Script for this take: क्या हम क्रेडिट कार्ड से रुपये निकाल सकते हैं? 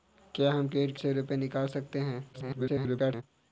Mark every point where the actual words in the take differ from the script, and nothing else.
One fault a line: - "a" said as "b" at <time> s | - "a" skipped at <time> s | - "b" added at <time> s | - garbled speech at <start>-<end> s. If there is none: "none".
- "कार्ड" skipped at 1.0 s
- garbled speech at 2.3-3.2 s